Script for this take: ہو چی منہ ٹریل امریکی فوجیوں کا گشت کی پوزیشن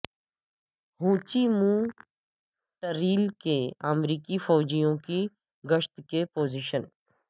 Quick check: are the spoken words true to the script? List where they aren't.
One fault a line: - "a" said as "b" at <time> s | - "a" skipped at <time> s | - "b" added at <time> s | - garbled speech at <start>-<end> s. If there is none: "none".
- "کے" added at 3.4 s
- "کا" said as "کی" at 5.0 s